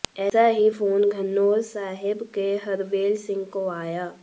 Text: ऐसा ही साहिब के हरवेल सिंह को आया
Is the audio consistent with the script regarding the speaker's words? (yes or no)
no